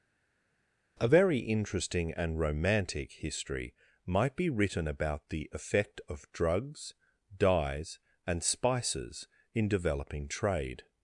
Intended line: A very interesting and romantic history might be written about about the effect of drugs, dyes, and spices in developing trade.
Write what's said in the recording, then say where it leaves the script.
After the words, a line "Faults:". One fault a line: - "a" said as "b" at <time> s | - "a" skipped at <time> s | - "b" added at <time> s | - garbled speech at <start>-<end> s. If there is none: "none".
A very interesting and romantic history might be written about the effect of drugs, dyes, and spices in developing trade.
Faults:
- "about" skipped at 5.3 s